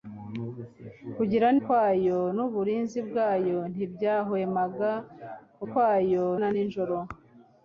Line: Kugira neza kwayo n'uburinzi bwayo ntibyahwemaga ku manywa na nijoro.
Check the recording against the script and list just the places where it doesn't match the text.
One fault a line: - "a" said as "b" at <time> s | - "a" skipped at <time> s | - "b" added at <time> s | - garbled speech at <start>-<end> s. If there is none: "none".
- "neza" skipped at 1.5 s
- "manywa" said as "kwayo" at 5.7 s